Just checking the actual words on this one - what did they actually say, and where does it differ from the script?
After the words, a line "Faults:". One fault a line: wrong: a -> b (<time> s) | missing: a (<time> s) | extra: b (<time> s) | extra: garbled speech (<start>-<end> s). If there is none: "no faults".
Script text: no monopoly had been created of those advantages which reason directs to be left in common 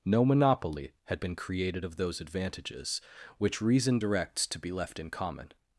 no monopoly had been created of those advantages which reason directs to be left in common
Faults:
no faults